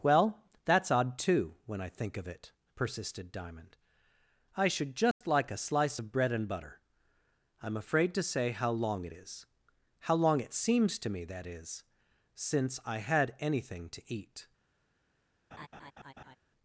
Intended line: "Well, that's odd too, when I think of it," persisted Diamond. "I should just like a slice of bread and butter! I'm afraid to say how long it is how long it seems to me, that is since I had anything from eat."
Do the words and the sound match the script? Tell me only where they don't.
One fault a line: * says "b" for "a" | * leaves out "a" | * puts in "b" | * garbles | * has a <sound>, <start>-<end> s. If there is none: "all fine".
* has a dropout, 5.1-5.2 s
* says "to" for "from"
* has a laugh, 15.5-16.4 s